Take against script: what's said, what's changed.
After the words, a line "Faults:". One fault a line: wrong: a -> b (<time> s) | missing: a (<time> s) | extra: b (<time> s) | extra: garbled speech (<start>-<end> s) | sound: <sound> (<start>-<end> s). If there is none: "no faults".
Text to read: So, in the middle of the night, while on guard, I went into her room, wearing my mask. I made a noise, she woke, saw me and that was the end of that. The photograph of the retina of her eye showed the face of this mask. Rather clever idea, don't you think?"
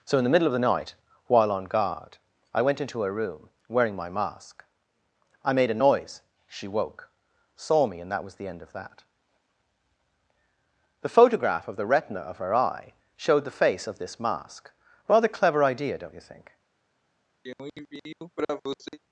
So, in the middle of the night, while on guard, I went into her room, wearing my mask. I made a noise, she woke, saw me and that was the end of that. The photograph of the retina of her eye showed the face of this mask. Rather clever idea, don't you think?"
Faults:
sound: throat clearing (17.4-19.0 s)